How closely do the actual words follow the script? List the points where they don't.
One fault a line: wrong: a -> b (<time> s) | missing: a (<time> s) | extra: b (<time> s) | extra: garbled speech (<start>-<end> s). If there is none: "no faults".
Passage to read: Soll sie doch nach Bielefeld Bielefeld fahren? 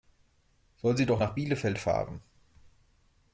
missing: Bielefeld (1.8 s)